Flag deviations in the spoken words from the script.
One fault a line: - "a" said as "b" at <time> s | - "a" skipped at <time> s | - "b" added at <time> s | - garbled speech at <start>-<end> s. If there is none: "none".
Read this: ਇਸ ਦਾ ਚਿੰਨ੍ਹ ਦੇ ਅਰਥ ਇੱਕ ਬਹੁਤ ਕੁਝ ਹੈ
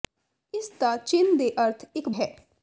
- "ਬਹੁਤ ਕੁਝ" skipped at 2.1 s